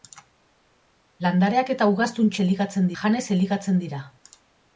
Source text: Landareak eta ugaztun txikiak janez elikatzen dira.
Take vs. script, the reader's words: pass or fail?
fail